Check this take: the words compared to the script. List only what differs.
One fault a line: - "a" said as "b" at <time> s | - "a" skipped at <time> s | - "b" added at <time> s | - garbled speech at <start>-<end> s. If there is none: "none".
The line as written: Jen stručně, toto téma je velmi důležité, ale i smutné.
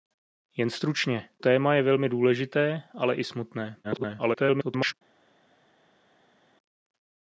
- "toto" skipped at 1.3 s
- garbled speech at 3.8-4.9 s